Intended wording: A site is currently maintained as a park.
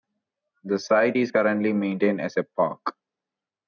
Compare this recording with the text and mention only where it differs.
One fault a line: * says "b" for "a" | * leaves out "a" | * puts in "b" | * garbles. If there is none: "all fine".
* says "The" for "A"